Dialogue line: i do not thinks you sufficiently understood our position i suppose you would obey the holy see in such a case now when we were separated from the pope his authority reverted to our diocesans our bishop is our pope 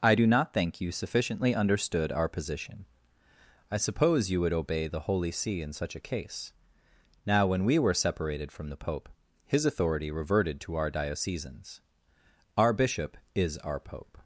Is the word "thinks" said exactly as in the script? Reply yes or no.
no